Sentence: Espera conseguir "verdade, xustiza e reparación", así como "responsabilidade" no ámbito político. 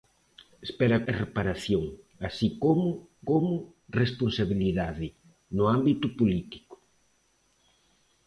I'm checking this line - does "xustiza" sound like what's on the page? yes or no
no